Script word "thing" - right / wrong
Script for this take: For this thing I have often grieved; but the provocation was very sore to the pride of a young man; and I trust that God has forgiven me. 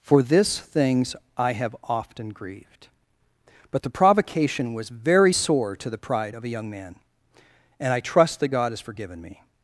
wrong